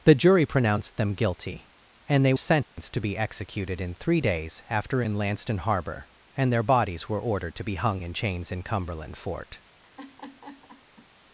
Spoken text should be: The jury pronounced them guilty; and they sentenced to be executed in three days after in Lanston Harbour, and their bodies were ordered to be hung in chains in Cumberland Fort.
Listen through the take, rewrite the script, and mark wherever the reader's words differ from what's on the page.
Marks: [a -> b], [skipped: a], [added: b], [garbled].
The jury pronounced them guilty; and they sentenced to be executed in three days after in Lanston Harbour, and their bodies were ordered to be hung in chains in Cumberland Fort.